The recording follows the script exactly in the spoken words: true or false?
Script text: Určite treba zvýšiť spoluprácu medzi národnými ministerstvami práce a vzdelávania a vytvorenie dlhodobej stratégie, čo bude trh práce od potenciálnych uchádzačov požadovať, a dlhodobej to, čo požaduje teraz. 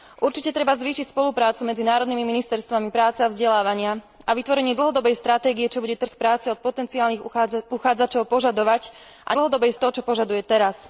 true